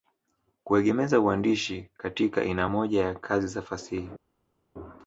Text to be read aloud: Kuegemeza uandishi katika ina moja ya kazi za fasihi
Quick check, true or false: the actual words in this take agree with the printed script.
true